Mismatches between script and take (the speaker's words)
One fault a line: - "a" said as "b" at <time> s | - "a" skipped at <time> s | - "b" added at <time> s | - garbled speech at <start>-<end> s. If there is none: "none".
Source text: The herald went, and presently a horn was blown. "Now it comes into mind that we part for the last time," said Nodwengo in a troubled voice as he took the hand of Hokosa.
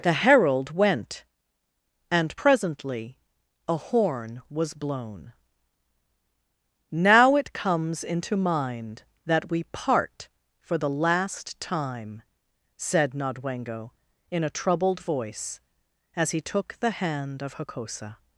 none